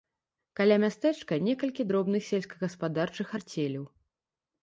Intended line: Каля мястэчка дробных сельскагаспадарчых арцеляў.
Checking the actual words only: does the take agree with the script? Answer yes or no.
no